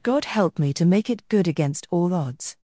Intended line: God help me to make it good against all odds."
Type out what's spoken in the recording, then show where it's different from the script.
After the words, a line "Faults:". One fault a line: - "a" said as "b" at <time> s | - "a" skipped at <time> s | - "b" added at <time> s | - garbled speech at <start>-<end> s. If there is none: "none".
God help me to make it good against all odds."
Faults:
none